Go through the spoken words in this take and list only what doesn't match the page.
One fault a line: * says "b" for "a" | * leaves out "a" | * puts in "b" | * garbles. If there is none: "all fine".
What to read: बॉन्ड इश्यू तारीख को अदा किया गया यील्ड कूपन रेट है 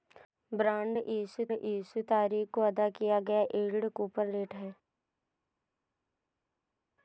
* puts in "इश्यू"